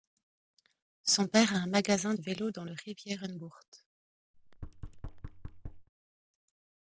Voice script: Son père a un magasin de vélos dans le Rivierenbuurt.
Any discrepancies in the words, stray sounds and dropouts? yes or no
yes